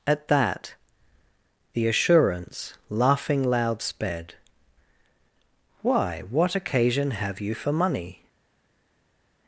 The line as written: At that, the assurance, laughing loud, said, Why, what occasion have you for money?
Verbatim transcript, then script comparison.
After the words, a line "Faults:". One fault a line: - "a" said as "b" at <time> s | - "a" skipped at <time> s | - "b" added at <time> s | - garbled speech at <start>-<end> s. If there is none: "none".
At that, the assurance, laughing loud, sped, Why, what occasion have you for money?
Faults:
- "said" said as "sped" at 3.8 s